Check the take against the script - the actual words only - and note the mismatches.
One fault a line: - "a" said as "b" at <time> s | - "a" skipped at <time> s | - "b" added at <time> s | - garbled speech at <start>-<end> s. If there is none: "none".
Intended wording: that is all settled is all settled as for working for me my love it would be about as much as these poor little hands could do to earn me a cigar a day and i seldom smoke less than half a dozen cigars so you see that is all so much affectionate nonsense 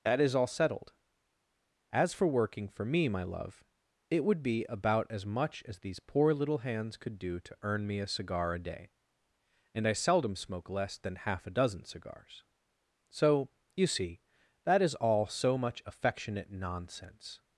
- "is all settled" skipped at 0.9 s